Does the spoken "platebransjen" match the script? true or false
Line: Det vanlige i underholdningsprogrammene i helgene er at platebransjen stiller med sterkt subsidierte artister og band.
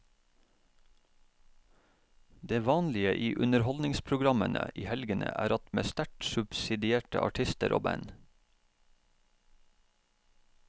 false